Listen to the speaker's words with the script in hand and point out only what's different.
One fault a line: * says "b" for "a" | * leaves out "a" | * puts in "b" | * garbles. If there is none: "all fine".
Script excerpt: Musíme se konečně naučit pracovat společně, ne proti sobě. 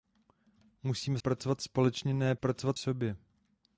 * leaves out "se konečně naučit"
* says "pracovat" for "proti"